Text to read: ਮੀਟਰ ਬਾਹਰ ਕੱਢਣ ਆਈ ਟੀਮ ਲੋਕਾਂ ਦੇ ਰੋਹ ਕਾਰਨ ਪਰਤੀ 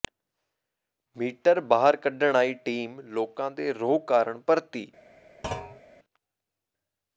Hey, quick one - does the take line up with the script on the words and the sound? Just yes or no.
no